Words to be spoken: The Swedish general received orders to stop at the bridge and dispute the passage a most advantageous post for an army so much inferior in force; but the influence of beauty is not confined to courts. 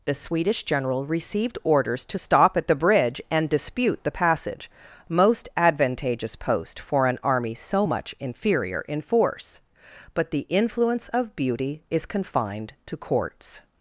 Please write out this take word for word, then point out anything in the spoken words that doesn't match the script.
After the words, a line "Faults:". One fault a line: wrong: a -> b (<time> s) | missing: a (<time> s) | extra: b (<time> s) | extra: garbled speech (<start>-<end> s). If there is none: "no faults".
The Swedish general received orders to stop at the bridge and dispute the passage most advantageous post for an army so much inferior in force; but the influence of beauty is confined to courts.
Faults:
missing: a (4.7 s)
missing: not (12.0 s)